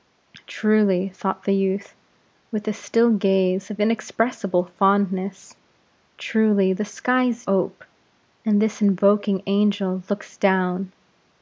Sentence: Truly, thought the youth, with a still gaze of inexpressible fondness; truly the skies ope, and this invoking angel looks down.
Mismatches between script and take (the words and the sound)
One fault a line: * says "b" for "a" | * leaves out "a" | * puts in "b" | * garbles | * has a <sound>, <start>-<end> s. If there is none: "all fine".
all fine